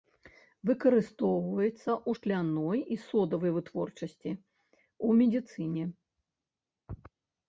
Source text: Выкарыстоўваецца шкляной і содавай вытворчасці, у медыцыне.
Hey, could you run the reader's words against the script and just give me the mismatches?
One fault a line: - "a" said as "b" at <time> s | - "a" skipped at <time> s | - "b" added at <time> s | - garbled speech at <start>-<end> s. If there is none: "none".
- "ў" added at 1.9 s